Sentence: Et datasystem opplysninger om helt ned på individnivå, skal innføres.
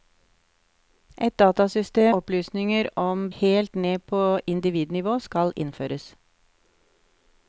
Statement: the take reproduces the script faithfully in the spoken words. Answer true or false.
true